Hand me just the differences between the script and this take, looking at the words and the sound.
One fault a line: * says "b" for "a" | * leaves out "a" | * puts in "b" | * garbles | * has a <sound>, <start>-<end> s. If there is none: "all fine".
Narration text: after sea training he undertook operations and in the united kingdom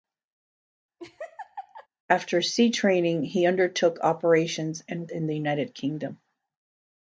* has a laugh, 1.0-1.9 s